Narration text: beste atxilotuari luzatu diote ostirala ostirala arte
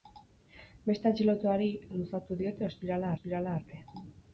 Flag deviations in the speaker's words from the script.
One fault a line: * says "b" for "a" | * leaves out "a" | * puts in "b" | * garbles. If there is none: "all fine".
all fine